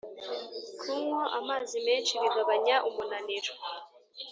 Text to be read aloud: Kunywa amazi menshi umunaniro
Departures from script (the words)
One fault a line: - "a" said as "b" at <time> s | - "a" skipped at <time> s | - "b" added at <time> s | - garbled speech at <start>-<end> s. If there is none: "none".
- "bigabanya" added at 2.2 s